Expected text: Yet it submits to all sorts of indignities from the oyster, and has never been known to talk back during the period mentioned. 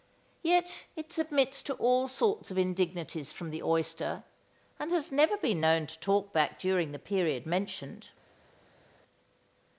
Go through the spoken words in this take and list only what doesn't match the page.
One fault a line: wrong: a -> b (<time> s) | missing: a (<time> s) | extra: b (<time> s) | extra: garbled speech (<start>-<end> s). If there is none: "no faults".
no faults